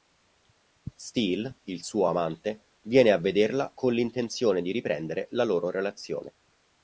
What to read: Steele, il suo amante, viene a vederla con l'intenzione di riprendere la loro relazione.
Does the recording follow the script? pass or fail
pass